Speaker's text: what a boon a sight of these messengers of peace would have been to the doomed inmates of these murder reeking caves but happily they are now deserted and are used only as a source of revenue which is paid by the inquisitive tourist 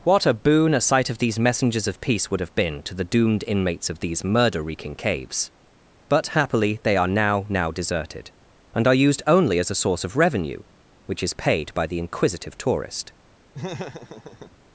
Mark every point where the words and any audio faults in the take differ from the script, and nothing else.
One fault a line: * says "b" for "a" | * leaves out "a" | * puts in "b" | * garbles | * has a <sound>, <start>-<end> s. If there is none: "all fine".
* puts in "now"
* has a laugh, 13.5-14.6 s